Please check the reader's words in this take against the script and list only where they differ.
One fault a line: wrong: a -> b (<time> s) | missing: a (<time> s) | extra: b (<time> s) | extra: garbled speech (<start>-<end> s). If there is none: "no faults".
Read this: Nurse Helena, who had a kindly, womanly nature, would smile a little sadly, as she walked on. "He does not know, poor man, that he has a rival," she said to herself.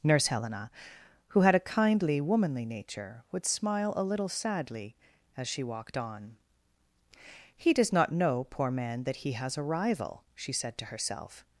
no faults